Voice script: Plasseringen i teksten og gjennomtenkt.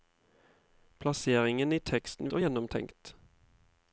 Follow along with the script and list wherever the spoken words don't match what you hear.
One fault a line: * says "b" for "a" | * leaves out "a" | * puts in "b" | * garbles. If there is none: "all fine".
all fine